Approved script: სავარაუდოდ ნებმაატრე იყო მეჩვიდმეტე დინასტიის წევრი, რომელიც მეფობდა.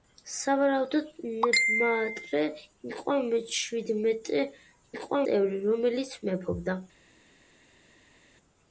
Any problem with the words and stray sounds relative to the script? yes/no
yes